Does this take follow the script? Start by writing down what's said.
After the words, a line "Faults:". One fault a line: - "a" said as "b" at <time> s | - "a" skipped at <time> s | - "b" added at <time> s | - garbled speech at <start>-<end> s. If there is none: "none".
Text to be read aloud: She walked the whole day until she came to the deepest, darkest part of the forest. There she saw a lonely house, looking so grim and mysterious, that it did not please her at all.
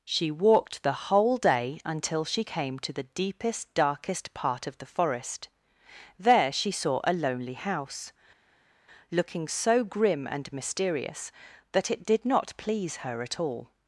She walked the whole day until she came to the deepest, darkest part of the forest. There she saw a lonely house, looking so grim and mysterious, that it did not please her at all.
Faults:
none